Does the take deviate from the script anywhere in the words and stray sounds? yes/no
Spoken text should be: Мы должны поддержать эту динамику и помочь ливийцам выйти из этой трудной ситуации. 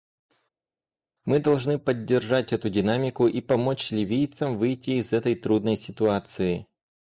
no